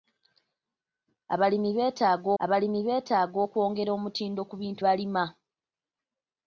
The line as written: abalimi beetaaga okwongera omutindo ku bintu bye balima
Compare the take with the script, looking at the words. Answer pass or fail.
fail